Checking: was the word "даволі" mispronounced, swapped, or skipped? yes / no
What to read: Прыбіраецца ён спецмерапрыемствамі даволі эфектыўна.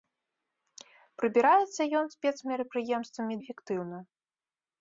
yes